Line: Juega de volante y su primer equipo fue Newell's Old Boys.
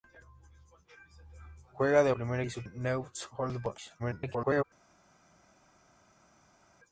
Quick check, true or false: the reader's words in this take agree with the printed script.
false